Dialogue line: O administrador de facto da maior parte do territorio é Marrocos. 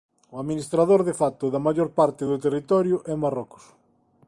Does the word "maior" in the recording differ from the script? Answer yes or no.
no